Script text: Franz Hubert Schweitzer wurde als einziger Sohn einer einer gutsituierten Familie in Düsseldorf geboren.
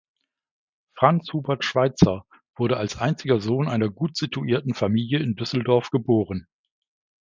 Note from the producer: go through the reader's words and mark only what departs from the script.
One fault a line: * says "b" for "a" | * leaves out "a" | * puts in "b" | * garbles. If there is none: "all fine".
* leaves out "einer"